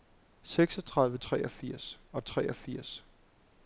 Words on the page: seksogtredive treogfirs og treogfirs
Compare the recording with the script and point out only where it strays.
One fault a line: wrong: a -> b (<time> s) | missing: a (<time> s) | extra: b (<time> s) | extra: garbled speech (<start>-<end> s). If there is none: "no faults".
no faults